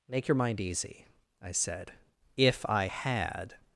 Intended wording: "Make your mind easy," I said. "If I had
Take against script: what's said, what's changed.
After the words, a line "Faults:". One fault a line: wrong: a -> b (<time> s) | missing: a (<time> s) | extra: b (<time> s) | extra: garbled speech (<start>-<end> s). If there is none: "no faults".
"Make your mind easy," I said. "If I had
Faults:
no faults